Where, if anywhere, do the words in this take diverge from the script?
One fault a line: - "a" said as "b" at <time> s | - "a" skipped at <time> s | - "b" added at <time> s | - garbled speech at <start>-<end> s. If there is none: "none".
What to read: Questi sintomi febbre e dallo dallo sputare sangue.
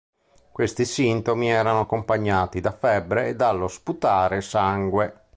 - "erano accompagnati da" added at 1.5 s
- "dallo" skipped at 3.7 s